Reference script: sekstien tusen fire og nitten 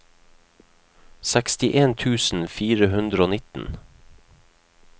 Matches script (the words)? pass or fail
fail